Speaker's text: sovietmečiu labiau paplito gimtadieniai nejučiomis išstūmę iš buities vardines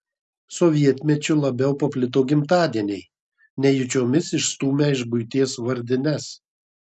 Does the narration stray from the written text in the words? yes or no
no